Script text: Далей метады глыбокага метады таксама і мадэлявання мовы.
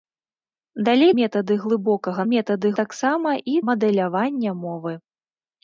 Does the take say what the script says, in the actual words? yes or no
yes